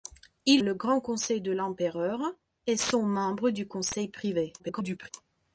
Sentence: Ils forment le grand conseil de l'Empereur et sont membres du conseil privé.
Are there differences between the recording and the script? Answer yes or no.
yes